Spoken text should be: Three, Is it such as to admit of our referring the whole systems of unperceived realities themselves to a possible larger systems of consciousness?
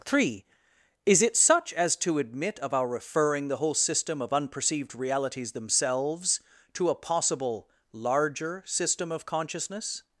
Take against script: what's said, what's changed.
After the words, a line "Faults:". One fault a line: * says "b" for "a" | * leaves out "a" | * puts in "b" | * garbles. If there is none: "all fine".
Three, Is it such as to admit of our referring the whole system of unperceived realities themselves to a possible larger system of consciousness?
Faults:
* says "system" for "systems"
* says "system" for "systems"